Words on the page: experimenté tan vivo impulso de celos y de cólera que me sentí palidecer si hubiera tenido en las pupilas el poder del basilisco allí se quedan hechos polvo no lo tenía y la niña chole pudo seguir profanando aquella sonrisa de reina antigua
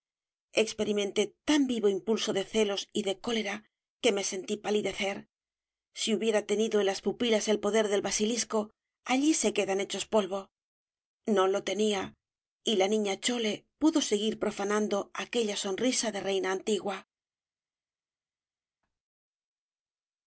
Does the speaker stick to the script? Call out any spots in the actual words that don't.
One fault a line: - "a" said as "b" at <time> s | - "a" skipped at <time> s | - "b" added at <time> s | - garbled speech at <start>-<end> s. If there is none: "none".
none